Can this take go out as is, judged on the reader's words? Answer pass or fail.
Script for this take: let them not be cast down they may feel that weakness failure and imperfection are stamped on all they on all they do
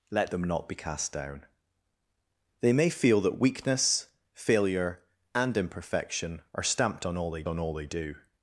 pass